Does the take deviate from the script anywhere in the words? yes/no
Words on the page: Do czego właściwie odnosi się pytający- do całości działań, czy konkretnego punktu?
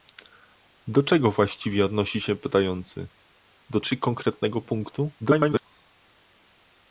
yes